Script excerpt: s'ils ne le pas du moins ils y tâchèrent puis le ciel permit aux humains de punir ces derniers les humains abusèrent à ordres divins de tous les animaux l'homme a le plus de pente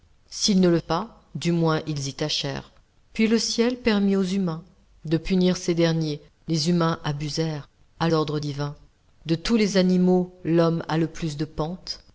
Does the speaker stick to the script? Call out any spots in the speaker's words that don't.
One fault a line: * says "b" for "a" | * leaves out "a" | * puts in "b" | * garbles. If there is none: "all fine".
all fine